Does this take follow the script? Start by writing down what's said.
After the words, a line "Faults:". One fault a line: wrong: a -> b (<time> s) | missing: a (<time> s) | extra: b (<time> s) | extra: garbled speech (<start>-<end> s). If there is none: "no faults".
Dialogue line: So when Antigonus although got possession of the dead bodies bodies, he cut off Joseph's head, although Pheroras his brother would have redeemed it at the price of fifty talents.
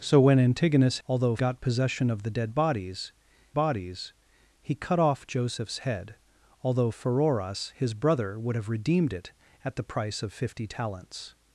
So when Antigonus although got possession of the dead bodies bodies, he cut off Joseph's head, although Pheroras his brother would have redeemed it at the price of fifty talents.
Faults:
no faults